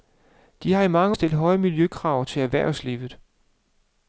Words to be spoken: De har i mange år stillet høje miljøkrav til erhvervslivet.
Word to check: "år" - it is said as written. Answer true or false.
false